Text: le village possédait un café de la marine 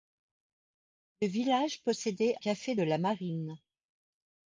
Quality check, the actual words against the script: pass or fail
fail